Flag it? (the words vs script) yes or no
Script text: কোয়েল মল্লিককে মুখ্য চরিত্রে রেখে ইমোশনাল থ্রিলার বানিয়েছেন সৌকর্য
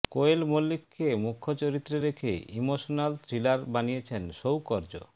no